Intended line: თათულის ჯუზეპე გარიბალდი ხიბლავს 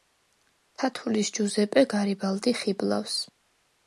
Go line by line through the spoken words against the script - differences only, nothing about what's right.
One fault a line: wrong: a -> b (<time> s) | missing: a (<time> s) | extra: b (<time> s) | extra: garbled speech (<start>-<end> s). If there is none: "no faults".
no faults